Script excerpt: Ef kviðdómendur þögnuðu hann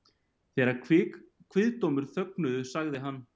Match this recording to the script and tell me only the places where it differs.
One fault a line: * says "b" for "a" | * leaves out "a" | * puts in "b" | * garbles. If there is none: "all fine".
* says "Þegar" for "Ef"
* puts in "sagði"